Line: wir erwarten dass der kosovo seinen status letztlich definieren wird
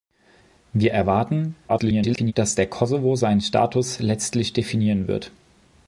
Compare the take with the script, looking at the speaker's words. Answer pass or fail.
fail